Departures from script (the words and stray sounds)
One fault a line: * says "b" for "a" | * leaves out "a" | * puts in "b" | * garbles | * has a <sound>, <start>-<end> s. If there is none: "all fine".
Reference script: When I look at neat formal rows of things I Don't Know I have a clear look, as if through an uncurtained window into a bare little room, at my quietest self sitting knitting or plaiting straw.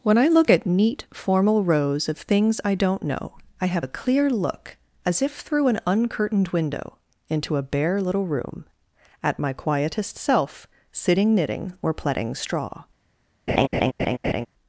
* has a laugh, 13.5-14.5 s